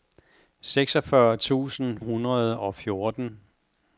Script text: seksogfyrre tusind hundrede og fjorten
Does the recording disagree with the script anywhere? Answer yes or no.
no